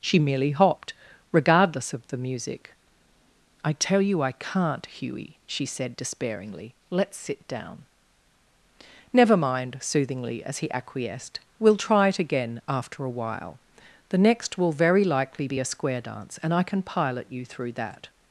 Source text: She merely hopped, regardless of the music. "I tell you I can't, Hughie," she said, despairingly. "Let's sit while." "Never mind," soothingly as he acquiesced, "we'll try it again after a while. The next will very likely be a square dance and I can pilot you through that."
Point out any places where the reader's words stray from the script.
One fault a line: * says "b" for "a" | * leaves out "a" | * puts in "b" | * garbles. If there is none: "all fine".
* says "down" for "while"